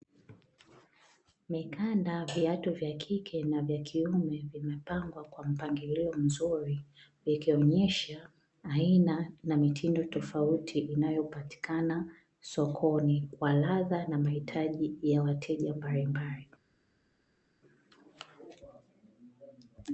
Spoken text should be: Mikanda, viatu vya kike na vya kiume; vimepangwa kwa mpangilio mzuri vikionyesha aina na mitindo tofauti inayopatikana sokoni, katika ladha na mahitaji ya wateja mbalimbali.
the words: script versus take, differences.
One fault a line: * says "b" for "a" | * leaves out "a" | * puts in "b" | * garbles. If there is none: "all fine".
* says "kwa" for "katika"